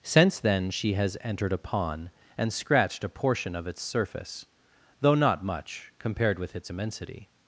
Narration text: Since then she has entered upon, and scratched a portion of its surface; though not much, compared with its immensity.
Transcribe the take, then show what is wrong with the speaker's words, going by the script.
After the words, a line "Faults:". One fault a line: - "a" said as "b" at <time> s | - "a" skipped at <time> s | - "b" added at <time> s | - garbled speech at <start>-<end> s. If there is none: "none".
Since then she has entered upon, and scratched a portion of its surface; though not much, compared with its immensity.
Faults:
none